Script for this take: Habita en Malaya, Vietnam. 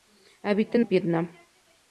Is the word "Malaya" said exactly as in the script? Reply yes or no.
no